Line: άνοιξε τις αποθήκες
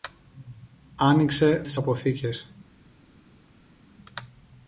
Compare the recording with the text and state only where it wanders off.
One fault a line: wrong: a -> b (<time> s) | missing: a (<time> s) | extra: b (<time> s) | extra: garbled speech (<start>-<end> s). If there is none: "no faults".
no faults